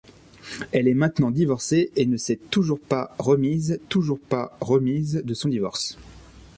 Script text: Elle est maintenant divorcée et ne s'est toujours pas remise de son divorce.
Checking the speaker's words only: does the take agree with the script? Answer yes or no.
no